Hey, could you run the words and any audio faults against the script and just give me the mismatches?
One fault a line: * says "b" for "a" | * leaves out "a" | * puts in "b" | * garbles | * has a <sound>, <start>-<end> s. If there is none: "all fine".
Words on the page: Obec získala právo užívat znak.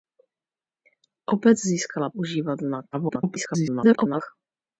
* leaves out "právo"
* garbles